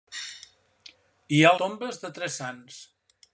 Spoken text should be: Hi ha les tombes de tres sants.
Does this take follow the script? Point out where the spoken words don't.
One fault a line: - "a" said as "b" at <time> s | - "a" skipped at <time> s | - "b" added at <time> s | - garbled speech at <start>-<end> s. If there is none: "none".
- "les" skipped at 1.5 s